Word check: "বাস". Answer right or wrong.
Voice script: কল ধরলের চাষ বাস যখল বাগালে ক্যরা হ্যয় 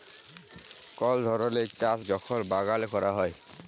wrong